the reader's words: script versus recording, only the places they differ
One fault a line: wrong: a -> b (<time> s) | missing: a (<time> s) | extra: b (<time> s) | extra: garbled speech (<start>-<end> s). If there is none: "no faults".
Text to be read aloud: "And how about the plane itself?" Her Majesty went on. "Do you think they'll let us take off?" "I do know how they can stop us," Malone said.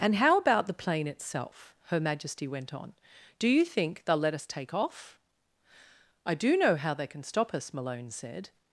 no faults